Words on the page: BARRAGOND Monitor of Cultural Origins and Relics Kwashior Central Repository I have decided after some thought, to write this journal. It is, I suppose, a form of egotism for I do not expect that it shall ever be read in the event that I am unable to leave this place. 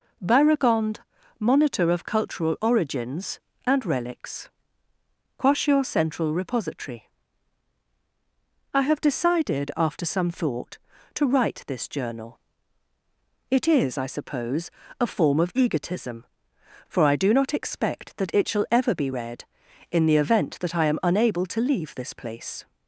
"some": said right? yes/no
yes